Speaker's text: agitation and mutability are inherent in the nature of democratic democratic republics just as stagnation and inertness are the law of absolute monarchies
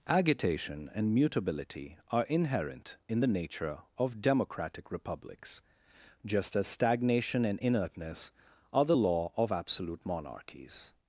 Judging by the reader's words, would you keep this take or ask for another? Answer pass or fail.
fail